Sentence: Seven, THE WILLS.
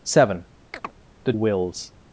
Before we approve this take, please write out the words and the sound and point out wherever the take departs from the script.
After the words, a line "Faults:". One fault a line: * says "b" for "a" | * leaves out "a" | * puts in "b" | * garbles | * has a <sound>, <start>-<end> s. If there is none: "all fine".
Seven, THE WILLS.
Faults:
* has a chirp, 0.7-0.9 s